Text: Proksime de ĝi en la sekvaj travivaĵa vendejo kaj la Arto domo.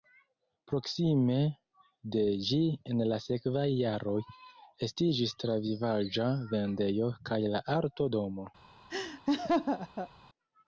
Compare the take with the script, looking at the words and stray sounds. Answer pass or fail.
fail